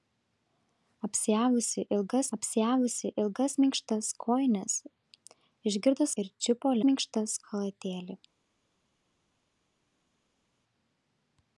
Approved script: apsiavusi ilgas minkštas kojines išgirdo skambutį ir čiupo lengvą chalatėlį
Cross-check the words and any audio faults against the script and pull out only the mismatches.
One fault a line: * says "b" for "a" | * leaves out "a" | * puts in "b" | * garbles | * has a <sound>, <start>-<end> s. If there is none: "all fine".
* puts in "apsiavusi ilgas"
* leaves out "skambutį"
* says "minkštas" for "lengvą"